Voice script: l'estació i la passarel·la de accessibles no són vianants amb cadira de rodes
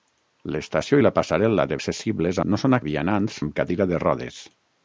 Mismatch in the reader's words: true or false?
false